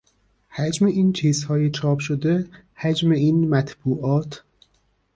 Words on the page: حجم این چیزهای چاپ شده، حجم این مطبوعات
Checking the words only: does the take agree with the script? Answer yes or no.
yes